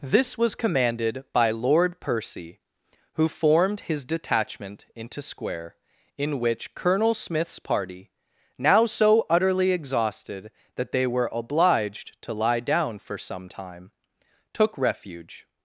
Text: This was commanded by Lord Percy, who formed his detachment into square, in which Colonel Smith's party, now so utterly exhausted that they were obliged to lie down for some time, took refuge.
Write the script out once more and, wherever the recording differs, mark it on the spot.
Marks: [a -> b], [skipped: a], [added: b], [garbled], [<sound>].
This was commanded by Lord Percy, who formed his detachment into square, in which Colonel Smith's party, now so utterly exhausted that they were obliged to lie down for some time, took refuge.